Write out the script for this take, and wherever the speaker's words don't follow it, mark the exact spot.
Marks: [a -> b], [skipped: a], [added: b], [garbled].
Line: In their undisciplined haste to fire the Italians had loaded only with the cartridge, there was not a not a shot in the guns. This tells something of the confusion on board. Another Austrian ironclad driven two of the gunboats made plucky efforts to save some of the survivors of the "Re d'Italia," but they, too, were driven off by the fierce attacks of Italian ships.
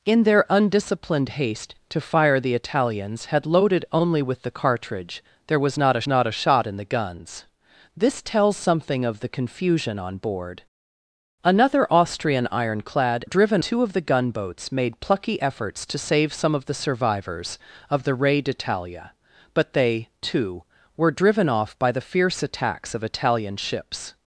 In their undisciplined haste to fire the Italians had loaded only with the cartridge, there was not a not a shot in the guns. This tells something of the confusion on board. Another Austrian ironclad driven two of the gunboats made plucky efforts to save some of the survivors of the "Re d'Italia," but they, too, were driven off by the fierce attacks of Italian ships.